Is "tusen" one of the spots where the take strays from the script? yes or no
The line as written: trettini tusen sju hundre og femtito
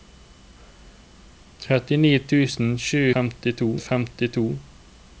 no